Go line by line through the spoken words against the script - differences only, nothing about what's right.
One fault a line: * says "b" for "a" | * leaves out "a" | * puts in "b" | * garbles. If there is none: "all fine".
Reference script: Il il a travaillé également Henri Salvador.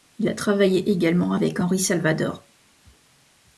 * leaves out "il"
* puts in "avec"